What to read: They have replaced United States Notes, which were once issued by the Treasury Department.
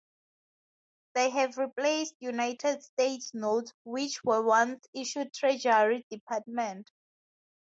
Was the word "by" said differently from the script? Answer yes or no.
yes